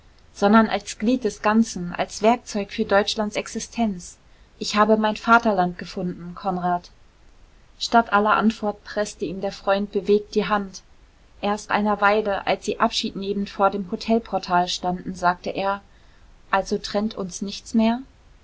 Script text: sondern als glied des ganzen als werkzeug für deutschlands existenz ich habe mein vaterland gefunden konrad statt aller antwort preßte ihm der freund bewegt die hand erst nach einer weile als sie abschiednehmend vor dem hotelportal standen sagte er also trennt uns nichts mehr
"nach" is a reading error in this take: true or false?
true